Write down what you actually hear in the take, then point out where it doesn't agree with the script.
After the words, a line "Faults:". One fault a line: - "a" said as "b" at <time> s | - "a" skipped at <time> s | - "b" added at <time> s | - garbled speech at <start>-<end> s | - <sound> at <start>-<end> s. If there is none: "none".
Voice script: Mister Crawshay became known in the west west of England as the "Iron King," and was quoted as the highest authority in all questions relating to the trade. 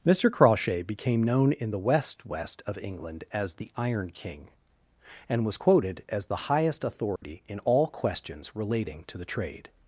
Mister Crawshay became known in the west west of England as the "Iron King," and was quoted as the highest authority in all questions relating to the trade.
Faults:
- dropout at 7.2-7.2 s